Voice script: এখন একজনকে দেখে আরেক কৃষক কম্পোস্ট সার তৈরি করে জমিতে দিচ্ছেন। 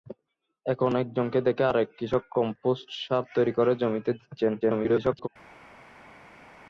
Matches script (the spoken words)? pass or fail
fail